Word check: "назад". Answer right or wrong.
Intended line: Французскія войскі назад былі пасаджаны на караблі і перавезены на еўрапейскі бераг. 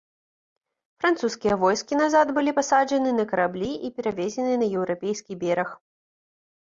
right